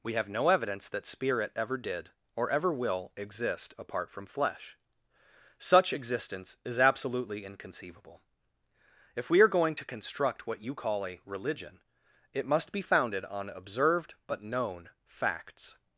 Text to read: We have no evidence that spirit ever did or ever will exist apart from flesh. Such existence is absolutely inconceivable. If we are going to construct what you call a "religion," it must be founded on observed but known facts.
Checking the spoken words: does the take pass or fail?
pass